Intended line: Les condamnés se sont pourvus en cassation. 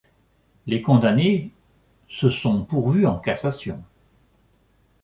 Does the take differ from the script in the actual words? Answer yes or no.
no